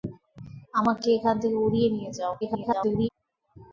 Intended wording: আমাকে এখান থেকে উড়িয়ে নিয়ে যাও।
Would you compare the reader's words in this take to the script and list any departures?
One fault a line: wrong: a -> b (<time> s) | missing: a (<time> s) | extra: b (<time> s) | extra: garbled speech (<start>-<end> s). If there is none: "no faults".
extra: garbled speech (2.4-3.1 s)